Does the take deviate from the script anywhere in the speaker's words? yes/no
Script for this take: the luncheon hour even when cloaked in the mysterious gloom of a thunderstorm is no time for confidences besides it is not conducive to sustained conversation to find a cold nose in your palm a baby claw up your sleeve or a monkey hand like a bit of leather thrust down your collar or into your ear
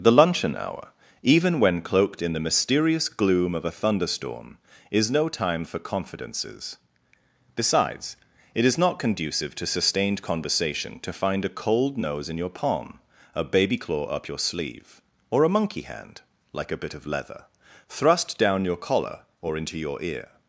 no